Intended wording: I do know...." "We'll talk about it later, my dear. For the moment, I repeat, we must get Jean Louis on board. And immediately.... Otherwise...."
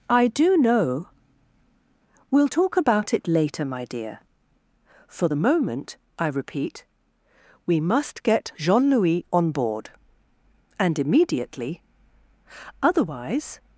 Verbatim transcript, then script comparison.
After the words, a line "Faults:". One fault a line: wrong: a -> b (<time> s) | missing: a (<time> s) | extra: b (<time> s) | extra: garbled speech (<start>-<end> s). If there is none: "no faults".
I do know...." "We'll talk about it later, my dear. For the moment, I repeat, we must get Jean Louis on board. And immediately.... Otherwise...."
Faults:
no faults